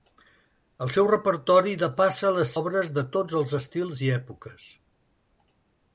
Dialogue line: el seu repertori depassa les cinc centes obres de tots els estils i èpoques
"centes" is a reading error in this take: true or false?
true